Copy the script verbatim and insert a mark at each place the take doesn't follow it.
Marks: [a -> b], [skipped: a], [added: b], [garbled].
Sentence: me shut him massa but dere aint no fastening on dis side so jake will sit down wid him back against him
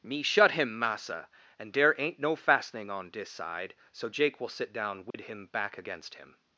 me shut him massa [but -> and] dere aint no fastening on dis side so jake will sit down wid him back against him